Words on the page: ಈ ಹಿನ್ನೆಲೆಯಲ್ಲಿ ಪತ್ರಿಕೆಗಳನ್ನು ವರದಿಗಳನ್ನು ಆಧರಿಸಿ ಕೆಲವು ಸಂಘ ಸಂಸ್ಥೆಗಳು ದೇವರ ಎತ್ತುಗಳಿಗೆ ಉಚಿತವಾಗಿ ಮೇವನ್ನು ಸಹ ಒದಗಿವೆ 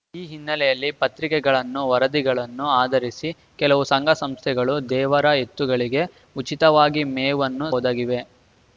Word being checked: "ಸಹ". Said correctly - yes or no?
no